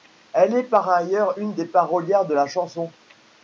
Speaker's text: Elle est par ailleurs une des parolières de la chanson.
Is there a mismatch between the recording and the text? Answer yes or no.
no